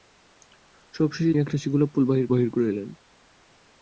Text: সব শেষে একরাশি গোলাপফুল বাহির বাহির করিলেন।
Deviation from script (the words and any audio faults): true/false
false